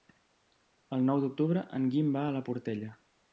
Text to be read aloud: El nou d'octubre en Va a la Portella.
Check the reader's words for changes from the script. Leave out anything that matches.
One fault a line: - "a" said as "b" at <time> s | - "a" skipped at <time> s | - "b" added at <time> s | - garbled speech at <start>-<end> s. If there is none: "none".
- "Guim" added at 1.9 s